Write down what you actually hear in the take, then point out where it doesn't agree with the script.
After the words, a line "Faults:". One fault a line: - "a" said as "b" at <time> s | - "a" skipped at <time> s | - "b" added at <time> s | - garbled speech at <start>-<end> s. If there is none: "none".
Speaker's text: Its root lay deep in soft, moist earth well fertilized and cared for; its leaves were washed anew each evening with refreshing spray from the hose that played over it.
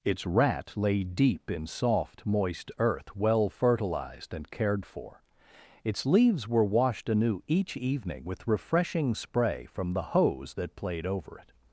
Its rat lay deep in soft, moist earth well fertilized and cared for; its leaves were washed anew each evening with refreshing spray from the hose that played over it.
Faults:
- "root" said as "rat" at 0.2 s